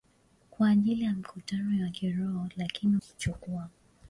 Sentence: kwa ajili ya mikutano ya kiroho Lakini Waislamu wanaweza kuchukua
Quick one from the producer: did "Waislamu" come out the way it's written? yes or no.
no